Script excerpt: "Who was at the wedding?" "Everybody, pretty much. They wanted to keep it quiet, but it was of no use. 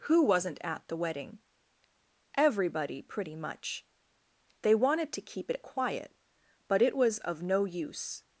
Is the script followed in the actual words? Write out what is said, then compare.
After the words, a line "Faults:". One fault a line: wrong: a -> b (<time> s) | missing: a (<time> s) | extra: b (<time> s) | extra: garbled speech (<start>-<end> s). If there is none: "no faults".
"Who wasn't at the wedding?" "Everybody, pretty much. They wanted to keep it quiet, but it was of no use.
Faults:
wrong: was -> wasn't (0.2 s)